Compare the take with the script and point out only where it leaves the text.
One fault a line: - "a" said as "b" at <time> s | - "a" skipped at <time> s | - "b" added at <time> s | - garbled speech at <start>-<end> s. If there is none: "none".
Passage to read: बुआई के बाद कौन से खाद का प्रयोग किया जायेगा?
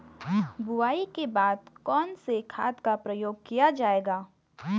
none